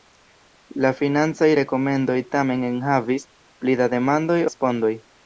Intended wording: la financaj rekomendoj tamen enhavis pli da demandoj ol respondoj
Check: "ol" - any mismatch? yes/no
yes